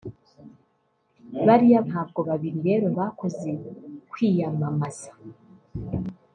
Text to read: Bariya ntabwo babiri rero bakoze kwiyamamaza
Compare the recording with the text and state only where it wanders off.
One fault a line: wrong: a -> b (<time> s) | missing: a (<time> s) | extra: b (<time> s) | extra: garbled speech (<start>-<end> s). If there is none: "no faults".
no faults